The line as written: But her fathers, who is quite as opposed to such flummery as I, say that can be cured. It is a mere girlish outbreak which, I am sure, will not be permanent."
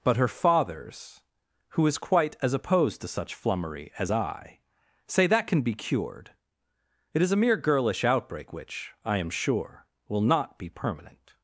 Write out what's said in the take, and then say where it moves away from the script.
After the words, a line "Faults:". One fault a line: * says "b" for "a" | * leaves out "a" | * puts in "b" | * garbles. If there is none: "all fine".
But her fathers, who is quite as opposed to such flummery as I, say that can be cured. It is a mere girlish outbreak which, I am sure, will not be permanent."
Faults:
all fine